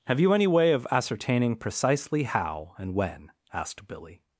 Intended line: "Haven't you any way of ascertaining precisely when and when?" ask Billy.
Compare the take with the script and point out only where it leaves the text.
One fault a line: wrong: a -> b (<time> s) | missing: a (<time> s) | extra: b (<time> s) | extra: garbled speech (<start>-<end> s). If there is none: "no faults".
wrong: Haven't -> Have (0.1 s)
wrong: when -> how (2.2 s)
wrong: ask -> asked (3.5 s)